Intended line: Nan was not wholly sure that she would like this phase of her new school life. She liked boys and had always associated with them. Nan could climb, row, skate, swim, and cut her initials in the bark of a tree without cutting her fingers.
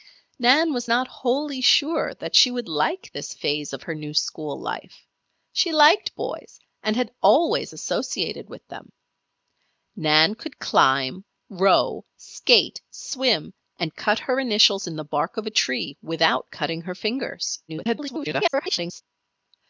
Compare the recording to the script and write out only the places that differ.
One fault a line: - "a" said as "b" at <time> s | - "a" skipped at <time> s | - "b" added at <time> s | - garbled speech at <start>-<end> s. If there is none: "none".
- garbled speech at 17.7-19.0 s